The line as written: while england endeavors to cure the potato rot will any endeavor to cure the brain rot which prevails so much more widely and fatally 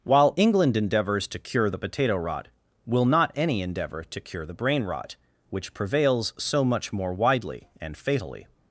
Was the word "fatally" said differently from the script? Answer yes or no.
no